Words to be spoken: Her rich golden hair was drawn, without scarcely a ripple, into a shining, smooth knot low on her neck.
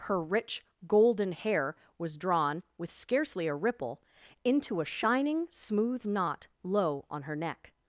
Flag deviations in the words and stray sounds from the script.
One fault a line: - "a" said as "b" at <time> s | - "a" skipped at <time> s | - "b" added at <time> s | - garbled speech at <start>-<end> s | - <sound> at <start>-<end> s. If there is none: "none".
- "without" said as "with" at 2.8 s